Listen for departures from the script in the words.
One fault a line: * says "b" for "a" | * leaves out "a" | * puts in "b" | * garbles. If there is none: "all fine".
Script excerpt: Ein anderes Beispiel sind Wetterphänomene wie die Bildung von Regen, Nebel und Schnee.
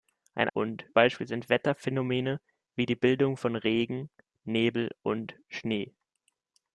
* says "und" for "anderes"